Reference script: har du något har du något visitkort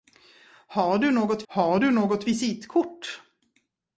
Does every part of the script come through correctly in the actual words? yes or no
yes